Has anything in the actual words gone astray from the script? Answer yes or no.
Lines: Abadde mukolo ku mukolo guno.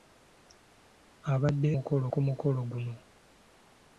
no